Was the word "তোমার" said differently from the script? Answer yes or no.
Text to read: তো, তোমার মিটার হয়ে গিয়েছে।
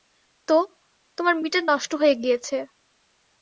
no